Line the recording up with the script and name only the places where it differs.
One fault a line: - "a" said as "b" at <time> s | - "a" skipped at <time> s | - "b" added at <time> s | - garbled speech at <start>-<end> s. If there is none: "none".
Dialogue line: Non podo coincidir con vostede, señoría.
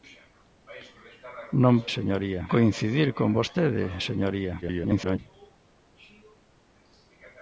- "podo" said as "señoría" at 2.0 s
- garbled speech at 4.6-5.2 s